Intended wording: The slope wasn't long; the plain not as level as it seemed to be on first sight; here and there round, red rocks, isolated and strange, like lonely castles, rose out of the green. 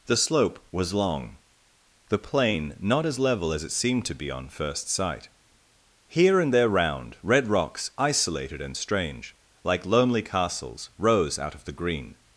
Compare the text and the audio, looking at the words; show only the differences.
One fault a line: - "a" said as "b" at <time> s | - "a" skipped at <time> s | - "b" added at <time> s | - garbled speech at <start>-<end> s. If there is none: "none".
- "wasn't" said as "was" at 0.7 s